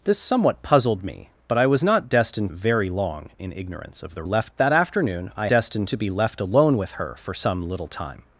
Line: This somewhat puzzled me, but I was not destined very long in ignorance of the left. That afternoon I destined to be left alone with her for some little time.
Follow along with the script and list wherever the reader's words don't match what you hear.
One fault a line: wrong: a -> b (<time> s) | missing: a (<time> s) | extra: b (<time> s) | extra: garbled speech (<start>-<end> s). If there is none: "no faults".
no faults